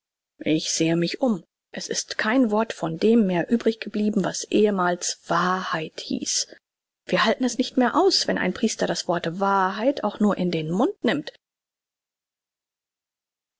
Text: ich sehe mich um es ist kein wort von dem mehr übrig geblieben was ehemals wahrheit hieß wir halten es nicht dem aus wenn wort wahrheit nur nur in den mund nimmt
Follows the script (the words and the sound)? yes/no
no